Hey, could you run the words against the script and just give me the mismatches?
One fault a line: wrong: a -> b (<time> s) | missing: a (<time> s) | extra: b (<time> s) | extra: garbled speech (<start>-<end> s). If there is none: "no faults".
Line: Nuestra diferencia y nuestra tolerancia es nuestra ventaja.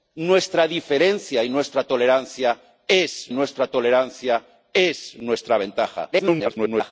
extra: tolerancia es nuestra (3.7 s)
extra: garbled speech (6.1-6.9 s)